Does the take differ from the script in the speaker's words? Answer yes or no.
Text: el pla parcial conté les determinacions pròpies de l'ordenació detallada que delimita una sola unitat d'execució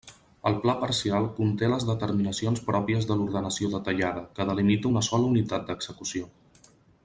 no